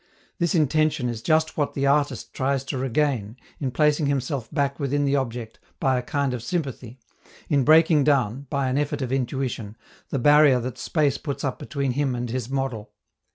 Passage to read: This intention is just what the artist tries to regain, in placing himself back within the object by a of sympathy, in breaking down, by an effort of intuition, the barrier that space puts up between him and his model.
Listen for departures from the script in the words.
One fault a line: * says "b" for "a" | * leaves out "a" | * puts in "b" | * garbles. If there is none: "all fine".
* puts in "kind"